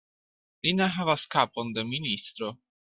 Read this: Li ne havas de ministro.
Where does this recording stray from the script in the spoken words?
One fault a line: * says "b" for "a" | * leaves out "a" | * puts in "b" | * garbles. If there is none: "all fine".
* puts in "kapon"